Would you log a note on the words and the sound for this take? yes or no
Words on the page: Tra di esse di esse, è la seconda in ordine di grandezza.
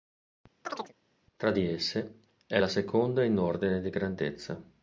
yes